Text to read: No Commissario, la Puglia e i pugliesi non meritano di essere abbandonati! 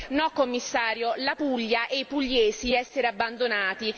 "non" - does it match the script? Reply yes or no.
no